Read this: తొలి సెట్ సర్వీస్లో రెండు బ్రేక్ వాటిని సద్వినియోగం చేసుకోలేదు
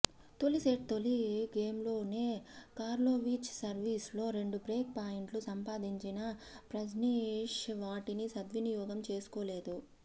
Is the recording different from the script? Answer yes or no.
yes